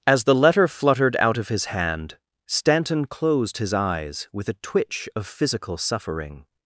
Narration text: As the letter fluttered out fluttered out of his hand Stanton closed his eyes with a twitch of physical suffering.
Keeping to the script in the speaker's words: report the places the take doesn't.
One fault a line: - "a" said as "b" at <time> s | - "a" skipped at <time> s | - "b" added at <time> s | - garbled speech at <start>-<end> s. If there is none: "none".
- "fluttered out" skipped at 1.4 s